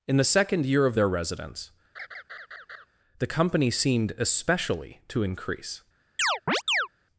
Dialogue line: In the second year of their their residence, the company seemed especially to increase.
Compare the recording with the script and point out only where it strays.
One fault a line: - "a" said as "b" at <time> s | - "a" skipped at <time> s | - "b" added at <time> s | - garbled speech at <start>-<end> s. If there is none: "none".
- "their" skipped at 1.1 s